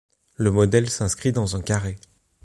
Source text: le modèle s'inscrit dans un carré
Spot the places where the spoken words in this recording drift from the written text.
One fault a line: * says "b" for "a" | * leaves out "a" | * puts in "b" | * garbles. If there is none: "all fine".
all fine